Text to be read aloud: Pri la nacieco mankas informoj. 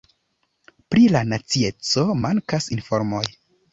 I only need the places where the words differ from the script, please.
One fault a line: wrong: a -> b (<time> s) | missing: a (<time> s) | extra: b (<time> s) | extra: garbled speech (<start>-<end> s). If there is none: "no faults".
no faults